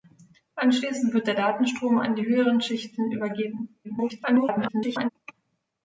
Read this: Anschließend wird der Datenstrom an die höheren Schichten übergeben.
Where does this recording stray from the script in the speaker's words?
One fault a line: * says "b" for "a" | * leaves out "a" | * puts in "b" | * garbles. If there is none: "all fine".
* garbles